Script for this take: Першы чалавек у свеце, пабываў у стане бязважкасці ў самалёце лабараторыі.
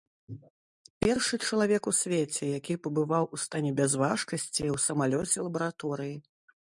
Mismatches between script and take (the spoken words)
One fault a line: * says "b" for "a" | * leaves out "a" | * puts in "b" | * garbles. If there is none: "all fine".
* puts in "які"